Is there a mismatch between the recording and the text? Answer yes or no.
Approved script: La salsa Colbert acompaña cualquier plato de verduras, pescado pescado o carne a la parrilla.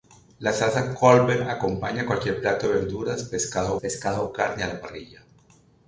no